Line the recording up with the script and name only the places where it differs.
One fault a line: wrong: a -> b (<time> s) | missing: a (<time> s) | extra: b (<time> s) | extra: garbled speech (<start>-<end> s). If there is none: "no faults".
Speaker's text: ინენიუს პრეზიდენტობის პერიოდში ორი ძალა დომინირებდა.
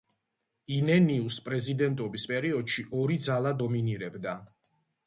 no faults